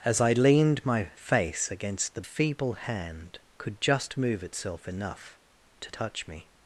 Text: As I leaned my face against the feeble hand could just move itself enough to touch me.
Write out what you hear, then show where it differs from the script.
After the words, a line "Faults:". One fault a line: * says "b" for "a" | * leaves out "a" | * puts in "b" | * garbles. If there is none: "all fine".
As I leaned my face against the feeble hand could just move itself enough to touch me.
Faults:
all fine